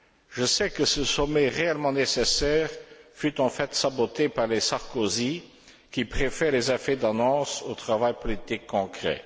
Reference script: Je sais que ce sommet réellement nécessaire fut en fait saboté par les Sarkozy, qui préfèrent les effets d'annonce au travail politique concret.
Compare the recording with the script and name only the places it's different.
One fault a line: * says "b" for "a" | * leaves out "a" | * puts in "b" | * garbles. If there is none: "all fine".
all fine